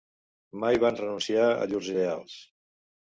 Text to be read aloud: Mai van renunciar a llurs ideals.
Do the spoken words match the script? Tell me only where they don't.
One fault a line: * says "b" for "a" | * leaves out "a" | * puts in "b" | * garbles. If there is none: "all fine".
all fine